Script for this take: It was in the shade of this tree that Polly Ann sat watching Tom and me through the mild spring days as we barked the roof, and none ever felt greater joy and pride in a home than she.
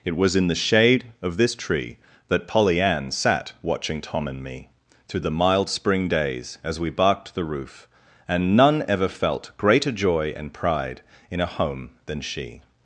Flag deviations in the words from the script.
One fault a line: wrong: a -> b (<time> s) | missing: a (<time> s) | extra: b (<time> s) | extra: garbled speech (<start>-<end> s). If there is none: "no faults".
no faults